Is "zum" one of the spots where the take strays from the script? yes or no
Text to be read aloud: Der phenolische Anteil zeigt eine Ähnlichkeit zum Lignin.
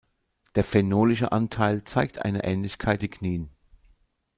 yes